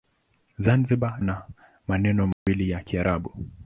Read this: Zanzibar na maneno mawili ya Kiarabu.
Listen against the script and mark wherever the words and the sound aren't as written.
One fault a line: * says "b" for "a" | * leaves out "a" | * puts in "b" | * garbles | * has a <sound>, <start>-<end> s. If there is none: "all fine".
* has a dropout, 2.3-2.5 s